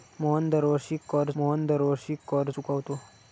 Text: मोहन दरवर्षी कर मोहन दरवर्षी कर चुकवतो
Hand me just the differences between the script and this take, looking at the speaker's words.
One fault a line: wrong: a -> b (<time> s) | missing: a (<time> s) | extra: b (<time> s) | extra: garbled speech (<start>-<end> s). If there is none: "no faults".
no faults